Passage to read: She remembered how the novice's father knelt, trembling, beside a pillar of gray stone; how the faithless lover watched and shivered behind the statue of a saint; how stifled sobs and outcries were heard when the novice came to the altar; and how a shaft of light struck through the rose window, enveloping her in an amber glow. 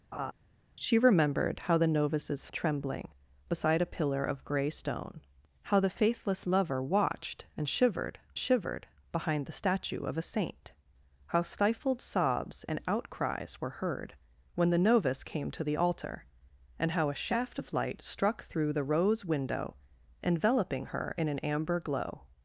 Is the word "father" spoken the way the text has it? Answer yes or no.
no